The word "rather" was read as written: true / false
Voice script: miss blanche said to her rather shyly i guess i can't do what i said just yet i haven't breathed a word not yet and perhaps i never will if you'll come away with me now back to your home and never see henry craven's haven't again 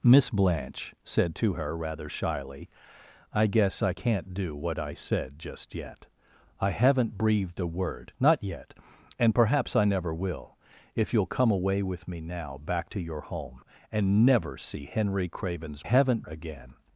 true